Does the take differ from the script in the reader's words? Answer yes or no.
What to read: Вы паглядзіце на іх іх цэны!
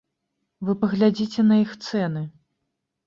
yes